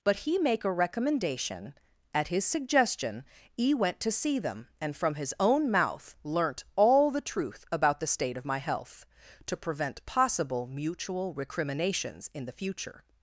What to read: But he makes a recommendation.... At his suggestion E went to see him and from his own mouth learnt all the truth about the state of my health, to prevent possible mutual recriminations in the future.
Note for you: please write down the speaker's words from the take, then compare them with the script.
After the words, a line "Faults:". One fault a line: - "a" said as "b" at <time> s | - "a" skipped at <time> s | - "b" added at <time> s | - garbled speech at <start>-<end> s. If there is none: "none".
But he make a recommendation.... At his suggestion E went to see them and from his own mouth learnt all the truth about the state of my health, to prevent possible mutual recriminations in the future.
Faults:
- "makes" said as "make" at 0.4 s
- "him" said as "them" at 4.4 s